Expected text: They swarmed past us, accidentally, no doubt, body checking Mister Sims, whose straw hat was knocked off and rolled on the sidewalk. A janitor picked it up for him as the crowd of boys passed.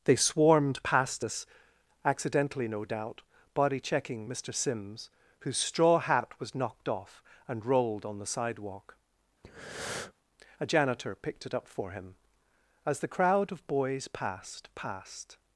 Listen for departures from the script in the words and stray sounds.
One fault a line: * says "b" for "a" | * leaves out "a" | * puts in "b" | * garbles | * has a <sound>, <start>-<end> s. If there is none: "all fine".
* has a breath, 9.4-10.1 s
* puts in "passed"